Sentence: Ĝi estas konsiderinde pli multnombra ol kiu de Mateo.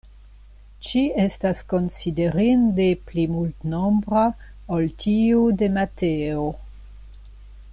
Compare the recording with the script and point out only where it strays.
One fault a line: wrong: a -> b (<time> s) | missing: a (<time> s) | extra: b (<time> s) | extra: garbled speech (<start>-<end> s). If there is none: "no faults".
wrong: kiu -> tiu (5.0 s)